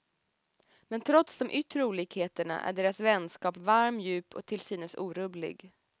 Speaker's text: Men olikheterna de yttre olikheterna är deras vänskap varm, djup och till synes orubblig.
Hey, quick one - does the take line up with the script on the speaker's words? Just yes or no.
no